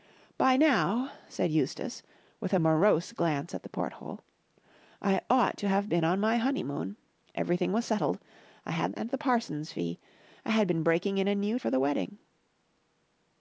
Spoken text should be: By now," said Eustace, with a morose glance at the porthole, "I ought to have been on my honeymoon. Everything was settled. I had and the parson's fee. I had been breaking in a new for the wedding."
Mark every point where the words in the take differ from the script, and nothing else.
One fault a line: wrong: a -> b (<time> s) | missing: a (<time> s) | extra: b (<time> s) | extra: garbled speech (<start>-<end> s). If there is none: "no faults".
no faults